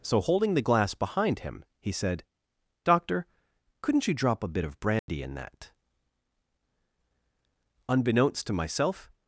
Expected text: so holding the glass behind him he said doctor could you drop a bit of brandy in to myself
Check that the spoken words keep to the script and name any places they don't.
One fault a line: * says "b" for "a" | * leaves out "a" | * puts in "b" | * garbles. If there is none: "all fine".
* says "couldn't" for "could"
* puts in "that unbeknownst"